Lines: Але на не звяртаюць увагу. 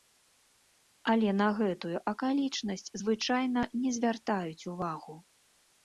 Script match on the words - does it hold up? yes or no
no